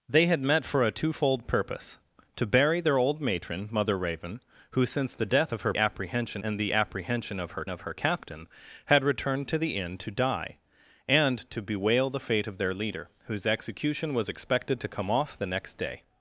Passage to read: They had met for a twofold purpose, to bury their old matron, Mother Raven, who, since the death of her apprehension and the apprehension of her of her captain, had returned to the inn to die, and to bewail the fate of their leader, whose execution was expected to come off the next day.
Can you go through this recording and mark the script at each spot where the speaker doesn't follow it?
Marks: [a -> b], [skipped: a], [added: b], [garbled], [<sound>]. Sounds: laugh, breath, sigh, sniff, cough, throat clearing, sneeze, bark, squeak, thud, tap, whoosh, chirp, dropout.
They had met for a twofold purpose, to bury their old matron, Mother Raven, who, since the death of her apprehension and the apprehension of her of her captain, had returned to the inn to die, and to bewail the fate of their leader, whose execution was expected to come off the next day.